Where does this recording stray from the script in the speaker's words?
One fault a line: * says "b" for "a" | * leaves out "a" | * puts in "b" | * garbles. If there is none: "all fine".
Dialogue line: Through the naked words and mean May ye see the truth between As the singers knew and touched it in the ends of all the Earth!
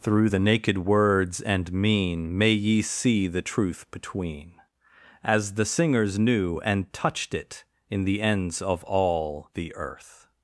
all fine